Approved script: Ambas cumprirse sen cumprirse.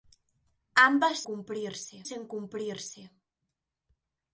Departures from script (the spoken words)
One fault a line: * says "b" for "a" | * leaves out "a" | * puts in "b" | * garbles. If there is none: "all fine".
all fine